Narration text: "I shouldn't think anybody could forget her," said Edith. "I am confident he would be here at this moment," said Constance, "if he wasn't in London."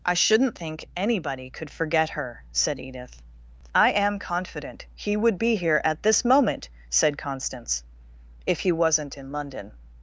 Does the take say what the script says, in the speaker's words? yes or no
yes